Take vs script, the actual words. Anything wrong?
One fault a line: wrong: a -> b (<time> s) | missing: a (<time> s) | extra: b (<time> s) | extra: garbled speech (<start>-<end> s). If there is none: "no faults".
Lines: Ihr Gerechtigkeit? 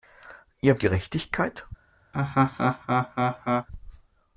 no faults